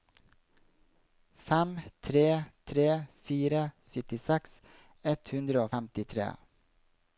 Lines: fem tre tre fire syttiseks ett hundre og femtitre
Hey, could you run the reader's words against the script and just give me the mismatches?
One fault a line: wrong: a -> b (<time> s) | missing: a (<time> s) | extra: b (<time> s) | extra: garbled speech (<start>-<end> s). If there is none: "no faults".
no faults